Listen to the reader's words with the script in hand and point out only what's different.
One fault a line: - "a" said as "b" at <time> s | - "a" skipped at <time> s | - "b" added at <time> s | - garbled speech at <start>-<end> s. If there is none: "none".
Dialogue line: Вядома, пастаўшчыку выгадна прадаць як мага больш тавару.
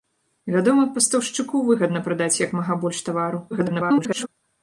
- garbled speech at 3.5-4.3 s